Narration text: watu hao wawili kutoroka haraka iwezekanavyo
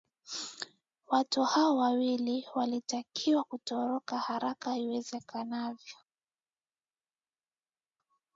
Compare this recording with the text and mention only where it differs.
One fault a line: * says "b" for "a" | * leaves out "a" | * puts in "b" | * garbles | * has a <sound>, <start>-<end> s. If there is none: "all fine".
* puts in "walitakiwa"